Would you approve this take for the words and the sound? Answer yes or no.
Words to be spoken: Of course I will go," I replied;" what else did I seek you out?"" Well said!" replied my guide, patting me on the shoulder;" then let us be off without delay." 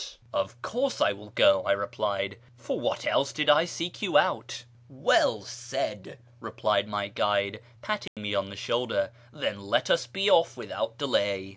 no